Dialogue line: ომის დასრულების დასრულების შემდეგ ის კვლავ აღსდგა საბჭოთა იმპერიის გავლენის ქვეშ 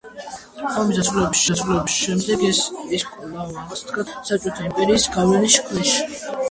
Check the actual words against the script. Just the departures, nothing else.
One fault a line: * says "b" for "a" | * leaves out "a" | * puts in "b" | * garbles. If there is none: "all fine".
all fine